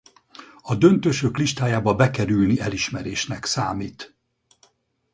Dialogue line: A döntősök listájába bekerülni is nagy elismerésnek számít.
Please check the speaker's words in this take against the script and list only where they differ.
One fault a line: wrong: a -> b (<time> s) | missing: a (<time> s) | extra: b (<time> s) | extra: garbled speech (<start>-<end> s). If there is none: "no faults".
missing: is nagy (2.5 s)